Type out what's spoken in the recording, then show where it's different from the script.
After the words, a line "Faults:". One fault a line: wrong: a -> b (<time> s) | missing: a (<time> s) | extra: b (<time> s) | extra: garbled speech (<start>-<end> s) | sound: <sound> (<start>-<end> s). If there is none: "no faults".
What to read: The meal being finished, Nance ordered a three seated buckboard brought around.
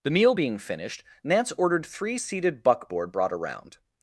The meal being finished, Nance ordered three seated buckboard brought around.
Faults:
missing: a (1.9 s)